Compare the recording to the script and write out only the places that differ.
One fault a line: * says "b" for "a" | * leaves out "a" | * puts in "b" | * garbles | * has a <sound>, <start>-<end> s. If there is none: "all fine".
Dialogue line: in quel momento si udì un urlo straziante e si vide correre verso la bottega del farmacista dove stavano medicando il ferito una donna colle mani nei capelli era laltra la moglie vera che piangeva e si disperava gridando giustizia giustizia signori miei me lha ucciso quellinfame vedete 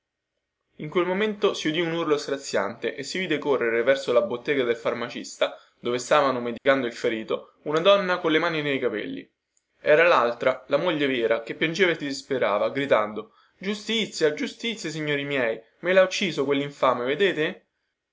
* has a dropout, 6.6-6.7 s